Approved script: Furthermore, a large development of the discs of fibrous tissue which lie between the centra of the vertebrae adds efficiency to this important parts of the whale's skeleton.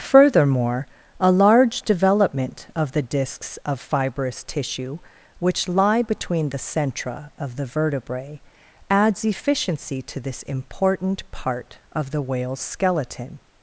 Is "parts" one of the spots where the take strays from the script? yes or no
yes